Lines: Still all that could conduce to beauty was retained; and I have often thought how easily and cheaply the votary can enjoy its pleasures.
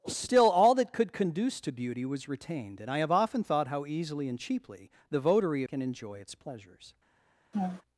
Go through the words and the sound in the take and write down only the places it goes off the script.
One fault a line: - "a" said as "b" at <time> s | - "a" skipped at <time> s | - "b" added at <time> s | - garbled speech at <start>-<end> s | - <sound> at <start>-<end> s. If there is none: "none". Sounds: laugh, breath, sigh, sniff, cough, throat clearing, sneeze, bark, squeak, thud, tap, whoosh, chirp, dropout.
- laugh at 7.5-7.8 s